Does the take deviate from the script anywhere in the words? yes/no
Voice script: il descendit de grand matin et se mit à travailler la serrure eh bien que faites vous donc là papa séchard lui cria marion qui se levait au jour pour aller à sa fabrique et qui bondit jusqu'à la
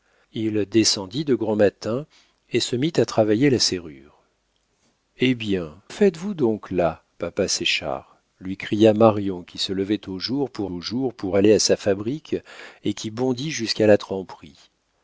yes